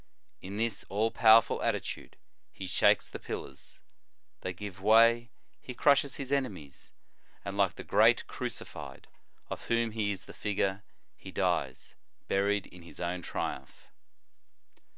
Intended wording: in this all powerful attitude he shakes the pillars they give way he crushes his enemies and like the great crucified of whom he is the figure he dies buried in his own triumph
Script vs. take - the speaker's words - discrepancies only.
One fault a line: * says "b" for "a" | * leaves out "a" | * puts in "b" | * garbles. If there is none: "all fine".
all fine